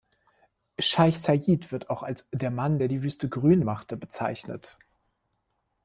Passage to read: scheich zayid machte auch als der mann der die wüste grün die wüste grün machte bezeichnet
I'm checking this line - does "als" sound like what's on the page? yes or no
yes